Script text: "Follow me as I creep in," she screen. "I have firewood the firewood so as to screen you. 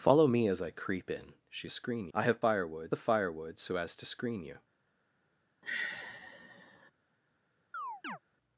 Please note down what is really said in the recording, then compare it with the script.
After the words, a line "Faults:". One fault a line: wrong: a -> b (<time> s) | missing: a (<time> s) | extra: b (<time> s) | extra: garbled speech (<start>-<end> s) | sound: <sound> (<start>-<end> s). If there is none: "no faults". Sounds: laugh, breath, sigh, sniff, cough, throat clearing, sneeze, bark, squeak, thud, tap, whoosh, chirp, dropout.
"Follow me as I creep in," she screen. "I have firewood the firewood so as to screen you.
Faults:
sound: sigh (5.6-6.9 s)
sound: chirp (7.7-8.2 s)